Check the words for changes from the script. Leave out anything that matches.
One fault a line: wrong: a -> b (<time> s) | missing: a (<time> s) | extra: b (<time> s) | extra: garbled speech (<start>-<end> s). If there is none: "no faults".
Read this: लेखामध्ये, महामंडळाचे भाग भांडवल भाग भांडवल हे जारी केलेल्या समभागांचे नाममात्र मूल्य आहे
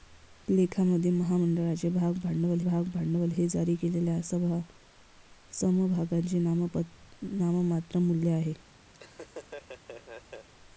no faults